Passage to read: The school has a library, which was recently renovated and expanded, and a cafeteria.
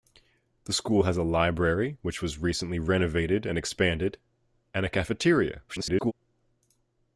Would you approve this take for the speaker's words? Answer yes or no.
no